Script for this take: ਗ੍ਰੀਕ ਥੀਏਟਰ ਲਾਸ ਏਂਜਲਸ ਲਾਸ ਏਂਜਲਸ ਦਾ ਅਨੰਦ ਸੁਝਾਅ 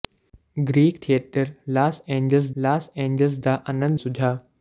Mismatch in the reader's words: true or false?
false